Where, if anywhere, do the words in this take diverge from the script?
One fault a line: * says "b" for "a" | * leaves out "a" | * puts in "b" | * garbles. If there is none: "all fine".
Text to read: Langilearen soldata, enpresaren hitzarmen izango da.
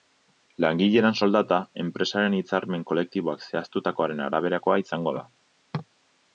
* puts in "kolektiboak zehaztutakoaren araberakoa"